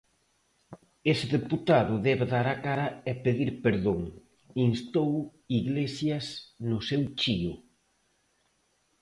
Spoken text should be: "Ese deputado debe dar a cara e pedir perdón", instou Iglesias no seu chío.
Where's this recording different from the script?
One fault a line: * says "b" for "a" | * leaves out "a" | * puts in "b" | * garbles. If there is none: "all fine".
all fine